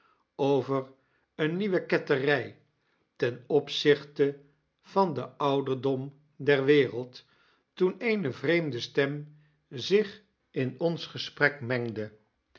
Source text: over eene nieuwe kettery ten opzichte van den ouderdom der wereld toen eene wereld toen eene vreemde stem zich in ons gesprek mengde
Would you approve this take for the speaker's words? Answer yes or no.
no